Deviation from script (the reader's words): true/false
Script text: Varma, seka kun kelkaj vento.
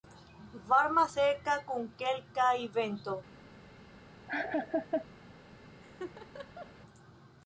false